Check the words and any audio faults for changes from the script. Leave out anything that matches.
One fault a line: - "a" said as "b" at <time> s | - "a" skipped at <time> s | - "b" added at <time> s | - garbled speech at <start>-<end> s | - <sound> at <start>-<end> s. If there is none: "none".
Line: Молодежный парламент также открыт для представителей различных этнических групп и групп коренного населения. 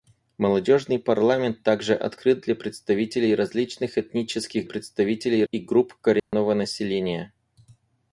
- "групп" said as "представителей" at 4.6 s
- dropout at 6.2-6.3 s